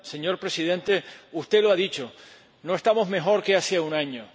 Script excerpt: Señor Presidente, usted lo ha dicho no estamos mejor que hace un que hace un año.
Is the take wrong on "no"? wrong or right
right